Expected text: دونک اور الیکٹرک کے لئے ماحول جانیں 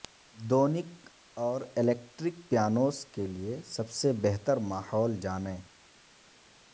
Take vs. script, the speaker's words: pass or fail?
fail